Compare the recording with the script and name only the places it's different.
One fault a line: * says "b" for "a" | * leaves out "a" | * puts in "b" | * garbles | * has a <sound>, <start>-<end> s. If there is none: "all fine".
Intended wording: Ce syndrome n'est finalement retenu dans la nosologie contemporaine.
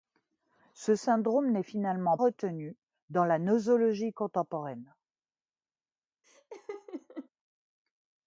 * has a laugh, 6.2-7.3 s